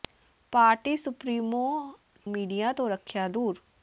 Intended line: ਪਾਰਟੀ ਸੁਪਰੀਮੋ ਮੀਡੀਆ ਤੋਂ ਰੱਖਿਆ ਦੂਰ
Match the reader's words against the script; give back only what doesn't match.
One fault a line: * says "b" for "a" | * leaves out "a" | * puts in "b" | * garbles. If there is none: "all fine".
all fine